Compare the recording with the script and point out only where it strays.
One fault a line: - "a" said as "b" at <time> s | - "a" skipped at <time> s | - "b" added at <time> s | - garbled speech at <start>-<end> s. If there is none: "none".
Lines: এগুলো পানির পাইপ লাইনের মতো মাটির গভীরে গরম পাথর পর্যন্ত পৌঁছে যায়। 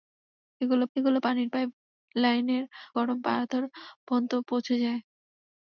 - "এগুলো" added at 1.0 s
- "মতো মাটির গভীরে" skipped at 2.6 s